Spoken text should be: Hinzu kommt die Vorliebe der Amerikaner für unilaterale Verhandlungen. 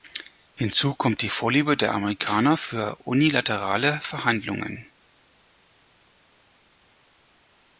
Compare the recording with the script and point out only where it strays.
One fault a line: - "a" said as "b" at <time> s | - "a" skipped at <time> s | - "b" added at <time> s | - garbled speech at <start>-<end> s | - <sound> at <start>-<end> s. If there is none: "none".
none